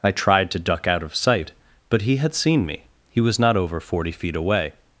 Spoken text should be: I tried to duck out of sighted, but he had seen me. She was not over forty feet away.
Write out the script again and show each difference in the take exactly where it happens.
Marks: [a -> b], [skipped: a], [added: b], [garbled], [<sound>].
I tried to duck out of [sighted, -> sight] but he had seen me. [She -> He] was not over forty feet away.